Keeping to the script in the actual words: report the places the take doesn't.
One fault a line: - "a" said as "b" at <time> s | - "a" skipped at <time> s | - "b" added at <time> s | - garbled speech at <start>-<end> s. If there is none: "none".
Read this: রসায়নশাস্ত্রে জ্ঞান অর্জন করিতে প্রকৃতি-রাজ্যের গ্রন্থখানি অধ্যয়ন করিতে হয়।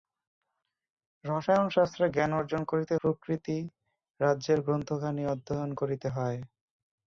none